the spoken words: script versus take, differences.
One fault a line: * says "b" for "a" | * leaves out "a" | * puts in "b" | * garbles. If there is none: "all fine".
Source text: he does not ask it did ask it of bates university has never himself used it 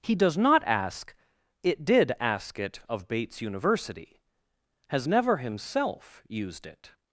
all fine